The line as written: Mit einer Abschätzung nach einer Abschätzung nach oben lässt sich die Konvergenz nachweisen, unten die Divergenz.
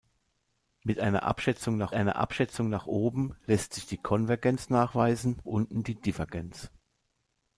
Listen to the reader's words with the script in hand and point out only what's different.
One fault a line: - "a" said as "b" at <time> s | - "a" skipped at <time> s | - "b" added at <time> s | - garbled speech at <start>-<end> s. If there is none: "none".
none